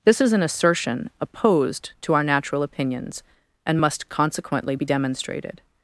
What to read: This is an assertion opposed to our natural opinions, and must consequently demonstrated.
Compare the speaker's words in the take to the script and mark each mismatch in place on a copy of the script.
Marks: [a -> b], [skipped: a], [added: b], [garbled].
This is an assertion opposed to our natural opinions, and must consequently [added: be] demonstrated.